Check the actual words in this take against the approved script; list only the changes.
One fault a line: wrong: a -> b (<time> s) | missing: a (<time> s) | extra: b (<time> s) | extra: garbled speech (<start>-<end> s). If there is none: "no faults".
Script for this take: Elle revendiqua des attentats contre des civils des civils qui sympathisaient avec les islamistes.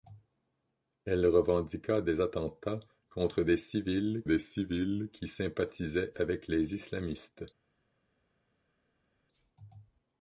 no faults